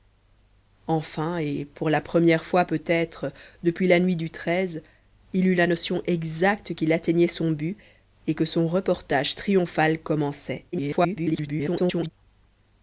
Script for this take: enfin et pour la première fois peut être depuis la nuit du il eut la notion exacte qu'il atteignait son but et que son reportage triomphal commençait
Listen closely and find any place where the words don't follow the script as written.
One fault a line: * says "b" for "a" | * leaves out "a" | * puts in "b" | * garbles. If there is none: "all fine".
* garbles